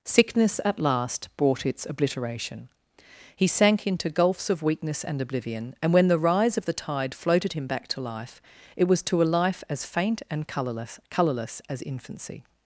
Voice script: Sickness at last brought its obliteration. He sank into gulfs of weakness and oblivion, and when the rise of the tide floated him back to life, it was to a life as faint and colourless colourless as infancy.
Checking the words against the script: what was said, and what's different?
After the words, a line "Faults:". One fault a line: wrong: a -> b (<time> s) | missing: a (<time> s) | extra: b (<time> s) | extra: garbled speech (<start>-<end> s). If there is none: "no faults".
Sickness at last brought its obliteration. He sank into gulfs of weakness and oblivion, and when the rise of the tide floated him back to life, it was to a life as faint and colourless colourless as infancy.
Faults:
no faults